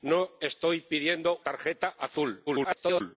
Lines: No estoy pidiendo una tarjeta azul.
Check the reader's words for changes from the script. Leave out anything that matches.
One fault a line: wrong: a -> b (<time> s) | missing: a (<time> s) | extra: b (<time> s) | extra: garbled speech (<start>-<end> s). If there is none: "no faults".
missing: una (1.4 s)
extra: garbled speech (2.5-3.2 s)